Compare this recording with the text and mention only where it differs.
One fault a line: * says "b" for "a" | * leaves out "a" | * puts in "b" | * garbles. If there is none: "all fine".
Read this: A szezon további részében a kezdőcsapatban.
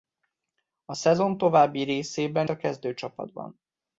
all fine